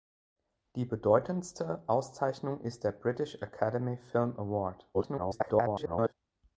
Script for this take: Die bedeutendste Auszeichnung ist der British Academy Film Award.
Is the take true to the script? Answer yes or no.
no